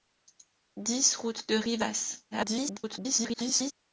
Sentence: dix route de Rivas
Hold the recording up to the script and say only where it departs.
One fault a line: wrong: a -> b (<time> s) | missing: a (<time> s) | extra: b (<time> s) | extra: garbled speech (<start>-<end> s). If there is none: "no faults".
extra: garbled speech (2.3-3.7 s)